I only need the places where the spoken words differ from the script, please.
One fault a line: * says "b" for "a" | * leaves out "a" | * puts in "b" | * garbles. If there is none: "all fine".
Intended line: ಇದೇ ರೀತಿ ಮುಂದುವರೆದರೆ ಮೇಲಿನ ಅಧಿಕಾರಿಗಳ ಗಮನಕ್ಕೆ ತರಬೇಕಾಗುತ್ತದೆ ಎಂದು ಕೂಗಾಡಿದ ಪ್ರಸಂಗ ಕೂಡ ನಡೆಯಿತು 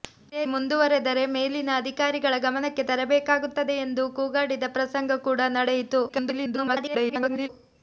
* leaves out "ರೀತಿ"
* garbles